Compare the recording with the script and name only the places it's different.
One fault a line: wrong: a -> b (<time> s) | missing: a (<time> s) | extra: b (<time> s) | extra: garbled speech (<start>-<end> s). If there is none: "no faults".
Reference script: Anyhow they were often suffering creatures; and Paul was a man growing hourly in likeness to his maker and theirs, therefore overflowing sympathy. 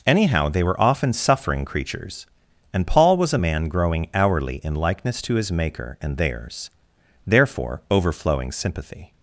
no faults